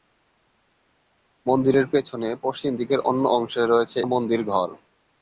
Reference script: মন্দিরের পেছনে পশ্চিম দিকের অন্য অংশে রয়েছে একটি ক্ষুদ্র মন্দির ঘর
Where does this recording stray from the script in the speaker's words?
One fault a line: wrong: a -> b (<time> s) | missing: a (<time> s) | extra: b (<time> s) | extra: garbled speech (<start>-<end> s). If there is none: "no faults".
missing: একটি ক্ষুদ্র (4.0 s)